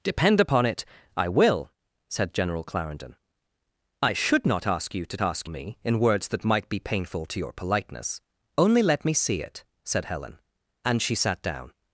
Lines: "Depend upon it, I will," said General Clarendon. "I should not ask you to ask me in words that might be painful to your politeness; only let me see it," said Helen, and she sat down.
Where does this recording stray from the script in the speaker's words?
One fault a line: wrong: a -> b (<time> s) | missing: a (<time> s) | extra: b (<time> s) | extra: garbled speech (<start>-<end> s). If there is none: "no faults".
no faults